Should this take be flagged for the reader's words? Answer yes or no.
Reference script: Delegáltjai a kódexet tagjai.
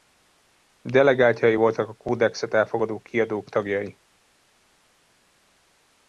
yes